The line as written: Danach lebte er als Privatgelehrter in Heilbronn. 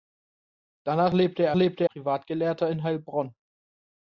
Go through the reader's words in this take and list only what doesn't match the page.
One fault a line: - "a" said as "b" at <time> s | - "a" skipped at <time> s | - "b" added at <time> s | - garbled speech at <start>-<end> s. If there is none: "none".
- "als" said as "lebte" at 1.5 s